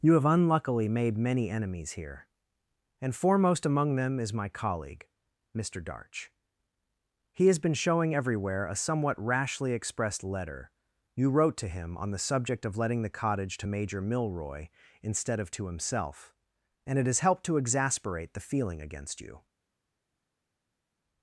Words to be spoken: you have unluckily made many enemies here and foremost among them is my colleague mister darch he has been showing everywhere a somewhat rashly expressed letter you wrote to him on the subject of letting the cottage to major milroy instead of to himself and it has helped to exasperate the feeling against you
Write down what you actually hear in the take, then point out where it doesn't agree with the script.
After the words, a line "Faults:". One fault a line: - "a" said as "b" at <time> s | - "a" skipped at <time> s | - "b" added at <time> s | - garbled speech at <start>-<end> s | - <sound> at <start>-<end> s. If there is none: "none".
you have unluckily made many enemies here and foremost among them is my colleague mister darch he has been showing everywhere a somewhat rashly expressed letter you wrote to him on the subject of letting the cottage to major milroy instead of to himself and it has helped to exasperate the feeling against you
Faults:
none